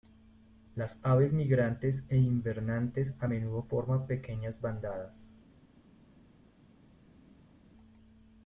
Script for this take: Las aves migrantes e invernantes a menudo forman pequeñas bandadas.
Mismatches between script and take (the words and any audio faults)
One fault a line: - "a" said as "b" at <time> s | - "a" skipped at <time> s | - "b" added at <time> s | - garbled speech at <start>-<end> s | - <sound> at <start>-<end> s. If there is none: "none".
none